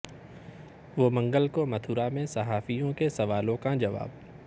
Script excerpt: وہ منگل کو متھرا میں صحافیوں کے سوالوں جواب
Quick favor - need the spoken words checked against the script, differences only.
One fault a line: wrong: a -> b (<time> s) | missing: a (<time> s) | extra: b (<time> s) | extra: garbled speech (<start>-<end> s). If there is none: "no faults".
extra: کا (3.6 s)